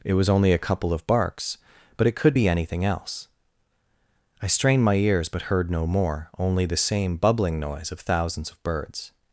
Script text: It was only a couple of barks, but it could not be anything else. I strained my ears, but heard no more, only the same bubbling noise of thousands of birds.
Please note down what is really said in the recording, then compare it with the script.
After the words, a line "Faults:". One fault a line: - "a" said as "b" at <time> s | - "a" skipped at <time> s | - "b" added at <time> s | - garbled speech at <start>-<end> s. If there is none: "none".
It was only a couple of barks, but it could be anything else. I strained my ears, but heard no more, only the same bubbling noise of thousands of birds.
Faults:
- "not" skipped at 2.4 s